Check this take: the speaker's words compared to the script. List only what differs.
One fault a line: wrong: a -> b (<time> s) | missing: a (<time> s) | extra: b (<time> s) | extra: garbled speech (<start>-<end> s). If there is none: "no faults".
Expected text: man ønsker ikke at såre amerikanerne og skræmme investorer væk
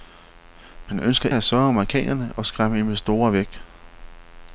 missing: ikke (1.3 s)